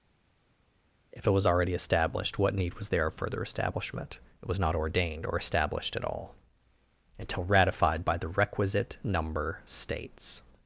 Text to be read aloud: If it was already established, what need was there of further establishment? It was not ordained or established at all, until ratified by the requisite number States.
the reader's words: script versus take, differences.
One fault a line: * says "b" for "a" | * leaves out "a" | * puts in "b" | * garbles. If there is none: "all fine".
all fine